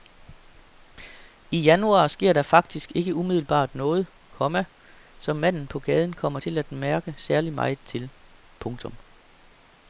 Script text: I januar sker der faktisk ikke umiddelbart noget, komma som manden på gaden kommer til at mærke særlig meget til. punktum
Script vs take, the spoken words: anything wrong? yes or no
no